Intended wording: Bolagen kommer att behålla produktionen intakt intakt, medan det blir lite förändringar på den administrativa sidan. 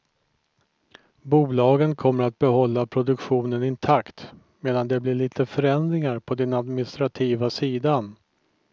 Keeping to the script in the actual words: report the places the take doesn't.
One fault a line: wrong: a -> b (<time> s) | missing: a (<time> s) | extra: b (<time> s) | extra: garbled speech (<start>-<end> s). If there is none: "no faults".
missing: intakt (4.3 s)